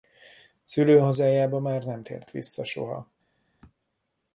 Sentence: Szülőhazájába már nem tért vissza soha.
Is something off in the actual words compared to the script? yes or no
no